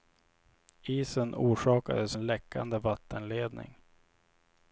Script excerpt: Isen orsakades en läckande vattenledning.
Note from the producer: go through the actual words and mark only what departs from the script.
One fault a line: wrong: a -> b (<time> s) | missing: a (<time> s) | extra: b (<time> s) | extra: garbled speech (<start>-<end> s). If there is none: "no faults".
no faults